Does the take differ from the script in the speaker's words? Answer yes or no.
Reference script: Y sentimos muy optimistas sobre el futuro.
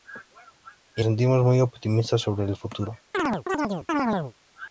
no